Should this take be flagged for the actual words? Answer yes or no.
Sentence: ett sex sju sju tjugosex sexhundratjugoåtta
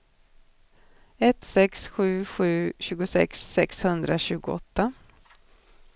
no